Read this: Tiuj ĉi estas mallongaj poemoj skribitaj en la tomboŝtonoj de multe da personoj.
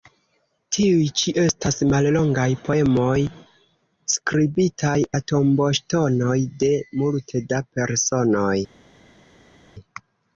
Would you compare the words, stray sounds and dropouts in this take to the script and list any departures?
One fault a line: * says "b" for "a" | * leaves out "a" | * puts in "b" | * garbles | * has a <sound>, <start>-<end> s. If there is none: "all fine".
* leaves out "en"